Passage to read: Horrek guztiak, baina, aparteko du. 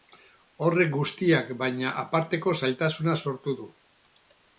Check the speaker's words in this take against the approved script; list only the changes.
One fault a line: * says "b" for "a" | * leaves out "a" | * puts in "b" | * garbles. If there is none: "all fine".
* puts in "zailtasuna sortu"